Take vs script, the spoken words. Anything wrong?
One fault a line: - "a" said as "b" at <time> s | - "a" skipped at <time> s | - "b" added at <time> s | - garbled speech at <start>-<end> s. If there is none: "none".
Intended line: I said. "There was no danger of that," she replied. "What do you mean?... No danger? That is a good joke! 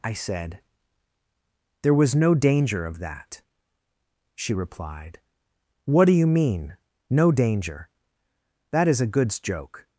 - "good" said as "goods" at 9.1 s